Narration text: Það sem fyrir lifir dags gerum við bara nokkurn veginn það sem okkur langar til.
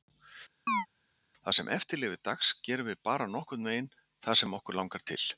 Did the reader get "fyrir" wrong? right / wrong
wrong